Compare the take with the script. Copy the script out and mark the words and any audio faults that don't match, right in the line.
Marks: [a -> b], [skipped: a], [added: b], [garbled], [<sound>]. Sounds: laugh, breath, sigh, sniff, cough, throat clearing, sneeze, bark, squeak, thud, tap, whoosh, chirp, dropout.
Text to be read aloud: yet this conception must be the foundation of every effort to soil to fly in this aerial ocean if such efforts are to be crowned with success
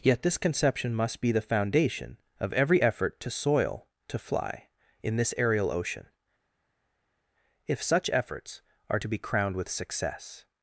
yet this conception must be the foundation of every effort to soil to fly in this aerial ocean if such efforts are to be crowned with success